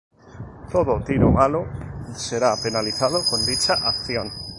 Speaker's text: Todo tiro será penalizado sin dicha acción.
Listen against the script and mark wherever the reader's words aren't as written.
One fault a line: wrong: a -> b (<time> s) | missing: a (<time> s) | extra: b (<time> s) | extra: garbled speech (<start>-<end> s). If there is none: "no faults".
extra: malo (1.3 s)
wrong: sin -> con (3.3 s)